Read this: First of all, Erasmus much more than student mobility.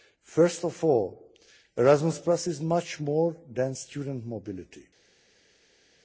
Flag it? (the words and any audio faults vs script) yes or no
yes